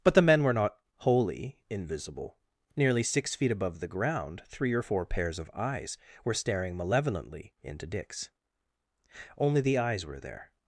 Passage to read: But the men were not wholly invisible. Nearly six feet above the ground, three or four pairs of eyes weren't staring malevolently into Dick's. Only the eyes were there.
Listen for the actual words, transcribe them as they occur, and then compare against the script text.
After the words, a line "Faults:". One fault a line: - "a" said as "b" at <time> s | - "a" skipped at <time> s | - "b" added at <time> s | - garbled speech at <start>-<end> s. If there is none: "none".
But the men were not wholly invisible. Nearly six feet above the ground, three or four pairs of eyes were staring malevolently into Dick's. Only the eyes were there.
Faults:
- "weren't" said as "were" at 6.2 s